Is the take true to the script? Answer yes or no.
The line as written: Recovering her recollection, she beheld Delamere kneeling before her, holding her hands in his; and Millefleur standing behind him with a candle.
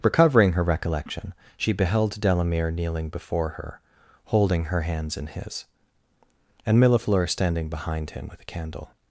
yes